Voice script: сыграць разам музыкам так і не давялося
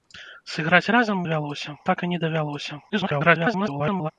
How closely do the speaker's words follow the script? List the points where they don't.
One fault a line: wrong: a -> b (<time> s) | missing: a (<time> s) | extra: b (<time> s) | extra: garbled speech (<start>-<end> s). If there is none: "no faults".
wrong: музыкам -> давялося (1.2 s)
extra: garbled speech (2.9-4.1 s)